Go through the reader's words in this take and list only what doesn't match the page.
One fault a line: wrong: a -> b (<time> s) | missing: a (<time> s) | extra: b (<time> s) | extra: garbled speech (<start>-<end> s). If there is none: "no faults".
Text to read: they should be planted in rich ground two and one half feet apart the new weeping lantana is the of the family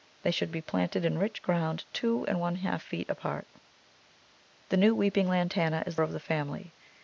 no faults